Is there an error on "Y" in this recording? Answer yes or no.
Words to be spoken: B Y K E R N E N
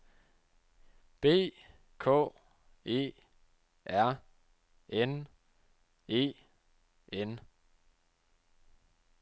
yes